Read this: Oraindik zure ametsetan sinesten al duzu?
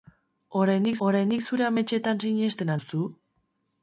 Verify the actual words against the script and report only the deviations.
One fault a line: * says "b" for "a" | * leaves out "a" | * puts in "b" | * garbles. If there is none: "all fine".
* puts in "oraindik"
* leaves out "al"